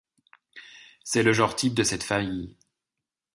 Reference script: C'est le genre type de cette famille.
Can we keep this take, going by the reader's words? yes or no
yes